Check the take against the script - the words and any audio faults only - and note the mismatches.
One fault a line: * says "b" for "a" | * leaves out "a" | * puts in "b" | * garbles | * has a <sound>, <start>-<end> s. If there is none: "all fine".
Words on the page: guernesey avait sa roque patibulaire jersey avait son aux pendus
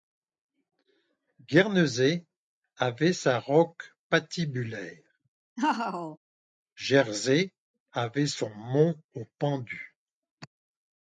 * has a laugh, 5.6-6.2 s
* puts in "mont"